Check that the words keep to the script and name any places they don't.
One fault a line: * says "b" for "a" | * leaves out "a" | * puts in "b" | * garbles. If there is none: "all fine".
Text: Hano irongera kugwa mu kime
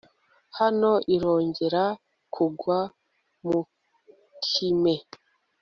all fine